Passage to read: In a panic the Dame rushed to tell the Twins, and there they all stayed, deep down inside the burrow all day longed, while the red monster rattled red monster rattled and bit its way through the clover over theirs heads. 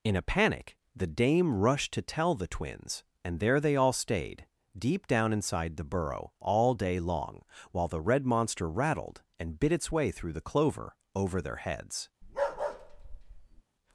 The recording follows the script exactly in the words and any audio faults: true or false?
false